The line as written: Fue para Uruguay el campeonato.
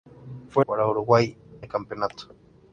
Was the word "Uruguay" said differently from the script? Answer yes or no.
no